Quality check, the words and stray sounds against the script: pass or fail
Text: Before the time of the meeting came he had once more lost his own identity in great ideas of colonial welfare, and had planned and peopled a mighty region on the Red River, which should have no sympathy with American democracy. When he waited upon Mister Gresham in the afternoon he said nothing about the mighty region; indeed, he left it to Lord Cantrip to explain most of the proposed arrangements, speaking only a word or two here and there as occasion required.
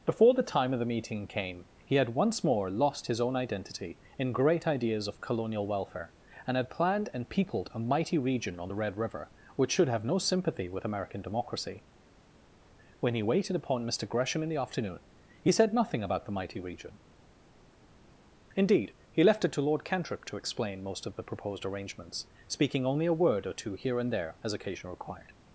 pass